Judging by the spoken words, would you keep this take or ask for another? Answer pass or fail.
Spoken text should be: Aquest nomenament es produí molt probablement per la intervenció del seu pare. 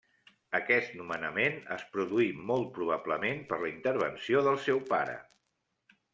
pass